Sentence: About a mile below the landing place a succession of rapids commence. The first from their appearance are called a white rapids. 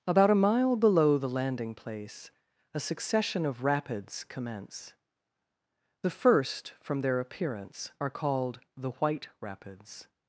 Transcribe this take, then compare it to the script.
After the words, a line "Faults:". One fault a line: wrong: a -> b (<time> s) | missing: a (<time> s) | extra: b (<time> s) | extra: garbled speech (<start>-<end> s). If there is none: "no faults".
About a mile below the landing place a succession of rapids commence. The first from their appearance are called the white rapids.
Faults:
wrong: a -> the (8.8 s)